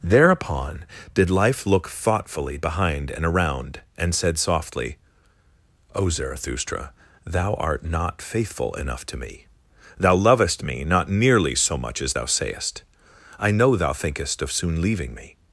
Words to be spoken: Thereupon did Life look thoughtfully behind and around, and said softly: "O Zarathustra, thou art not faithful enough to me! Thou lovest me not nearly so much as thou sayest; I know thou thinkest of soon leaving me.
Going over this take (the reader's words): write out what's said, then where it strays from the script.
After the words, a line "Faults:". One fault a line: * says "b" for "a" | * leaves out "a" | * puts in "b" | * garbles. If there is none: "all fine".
Thereupon did Life look thoughtfully behind and around, and said softly: "O Zarathustra, thou art not faithful enough to me! Thou lovest me not nearly so much as thou sayest; I know thou thinkest of soon leaving me.
Faults:
all fine